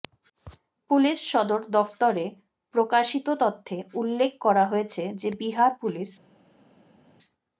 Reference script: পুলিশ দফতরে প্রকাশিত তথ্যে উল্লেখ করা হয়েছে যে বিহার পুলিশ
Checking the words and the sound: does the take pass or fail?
fail